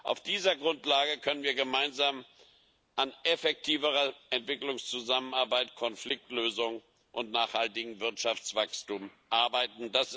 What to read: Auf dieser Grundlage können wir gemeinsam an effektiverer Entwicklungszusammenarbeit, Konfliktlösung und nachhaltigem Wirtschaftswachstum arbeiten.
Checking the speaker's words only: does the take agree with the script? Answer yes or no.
yes